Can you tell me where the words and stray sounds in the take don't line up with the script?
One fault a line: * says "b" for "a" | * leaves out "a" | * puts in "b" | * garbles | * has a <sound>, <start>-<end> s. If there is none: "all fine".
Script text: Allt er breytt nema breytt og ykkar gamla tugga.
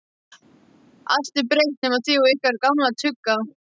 * says "þið" for "breytt"